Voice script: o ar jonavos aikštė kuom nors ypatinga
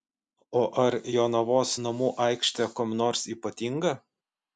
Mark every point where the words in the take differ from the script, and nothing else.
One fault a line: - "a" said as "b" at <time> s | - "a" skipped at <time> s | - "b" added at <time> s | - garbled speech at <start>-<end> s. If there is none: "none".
- "namų" added at 1.8 s